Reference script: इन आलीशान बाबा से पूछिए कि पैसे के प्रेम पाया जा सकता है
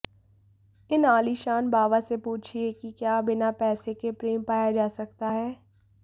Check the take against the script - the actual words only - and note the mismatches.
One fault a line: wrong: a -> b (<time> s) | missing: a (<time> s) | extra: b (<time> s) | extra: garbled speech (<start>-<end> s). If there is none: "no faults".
extra: क्या बिना (3.0 s)